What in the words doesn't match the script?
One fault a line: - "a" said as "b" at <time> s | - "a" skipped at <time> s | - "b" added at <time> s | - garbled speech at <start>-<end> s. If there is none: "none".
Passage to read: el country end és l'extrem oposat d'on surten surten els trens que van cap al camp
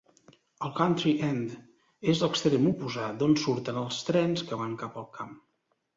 - "surten" skipped at 3.8 s